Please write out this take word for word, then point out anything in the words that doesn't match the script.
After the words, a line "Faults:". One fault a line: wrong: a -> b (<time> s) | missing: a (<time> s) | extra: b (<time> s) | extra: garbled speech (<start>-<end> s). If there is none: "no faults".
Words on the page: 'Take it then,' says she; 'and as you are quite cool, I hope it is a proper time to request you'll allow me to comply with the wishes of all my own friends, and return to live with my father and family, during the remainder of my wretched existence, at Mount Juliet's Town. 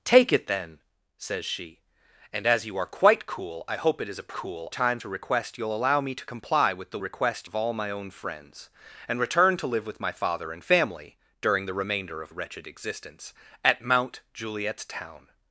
'Take it then,' says she; 'and as you are quite cool, I hope it is a cool time to request you'll allow me to comply with the request of all my own friends, and return to live with my father and family, during the remainder of wretched existence, at Mount Juliet's Town.
Faults:
wrong: proper -> cool (4.3 s)
wrong: wishes -> request (7.0 s)
missing: my (12.3 s)